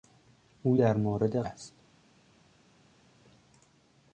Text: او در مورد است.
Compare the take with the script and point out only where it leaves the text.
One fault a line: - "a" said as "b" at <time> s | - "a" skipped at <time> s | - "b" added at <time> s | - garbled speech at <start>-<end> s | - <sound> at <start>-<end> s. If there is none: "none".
none